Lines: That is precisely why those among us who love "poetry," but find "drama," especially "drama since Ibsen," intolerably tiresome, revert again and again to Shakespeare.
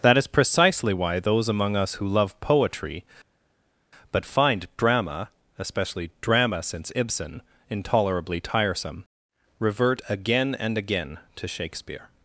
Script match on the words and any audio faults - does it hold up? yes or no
yes